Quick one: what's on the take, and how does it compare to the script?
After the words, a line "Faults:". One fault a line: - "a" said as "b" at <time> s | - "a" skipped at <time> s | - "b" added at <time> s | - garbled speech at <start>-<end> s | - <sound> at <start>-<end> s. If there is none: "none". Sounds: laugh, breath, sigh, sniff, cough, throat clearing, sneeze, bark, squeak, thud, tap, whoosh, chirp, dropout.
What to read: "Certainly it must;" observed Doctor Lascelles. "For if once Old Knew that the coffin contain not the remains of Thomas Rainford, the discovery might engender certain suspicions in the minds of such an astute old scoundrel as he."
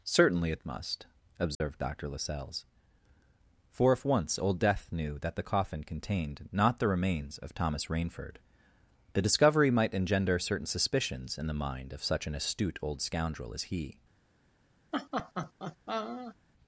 "Certainly it must;" observed Doctor Lascelles. "For if once Old Death knew that the coffin contained not the remains of Thomas Rainford, the discovery might engender certain suspicions in the mind of such an astute old scoundrel as he."
Faults:
- dropout at 1.5-1.6 s
- "Death" added at 4.6 s
- "contain" said as "contained" at 5.8 s
- "minds" said as "mind" at 11.5 s
- laugh at 14.9-16.4 s